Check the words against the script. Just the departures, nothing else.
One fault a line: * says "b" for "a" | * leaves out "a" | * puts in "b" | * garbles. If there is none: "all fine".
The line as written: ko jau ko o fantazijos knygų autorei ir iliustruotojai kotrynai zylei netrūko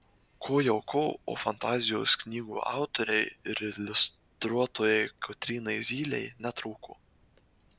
all fine